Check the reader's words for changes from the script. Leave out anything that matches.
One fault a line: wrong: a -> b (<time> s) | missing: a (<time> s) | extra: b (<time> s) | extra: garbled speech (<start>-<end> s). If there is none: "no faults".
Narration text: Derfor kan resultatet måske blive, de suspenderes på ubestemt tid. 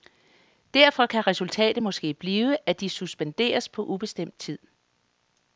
extra: at (2.7 s)